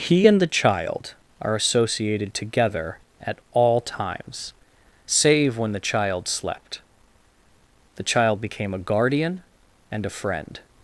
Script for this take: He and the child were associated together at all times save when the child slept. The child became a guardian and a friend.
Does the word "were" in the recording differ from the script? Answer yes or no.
yes